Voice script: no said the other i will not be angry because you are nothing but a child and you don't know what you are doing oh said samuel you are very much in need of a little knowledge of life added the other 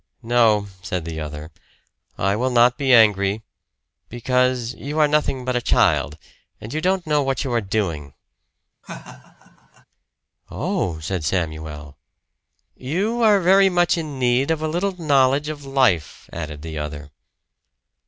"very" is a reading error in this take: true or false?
false